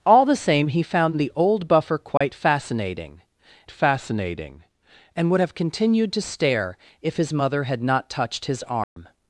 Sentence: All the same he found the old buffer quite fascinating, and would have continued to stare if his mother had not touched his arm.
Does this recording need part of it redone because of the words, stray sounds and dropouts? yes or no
yes